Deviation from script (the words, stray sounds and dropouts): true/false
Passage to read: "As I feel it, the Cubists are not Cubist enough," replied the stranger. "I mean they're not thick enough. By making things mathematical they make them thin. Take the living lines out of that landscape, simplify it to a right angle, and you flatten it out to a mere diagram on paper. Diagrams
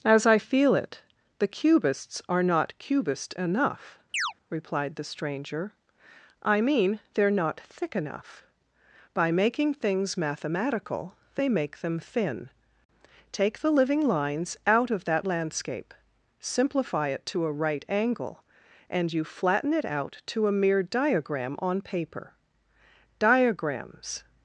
true